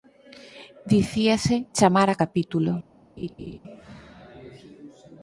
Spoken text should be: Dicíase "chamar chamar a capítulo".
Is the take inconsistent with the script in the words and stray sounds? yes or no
yes